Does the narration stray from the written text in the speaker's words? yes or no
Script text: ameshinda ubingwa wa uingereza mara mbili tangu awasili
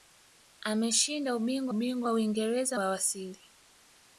yes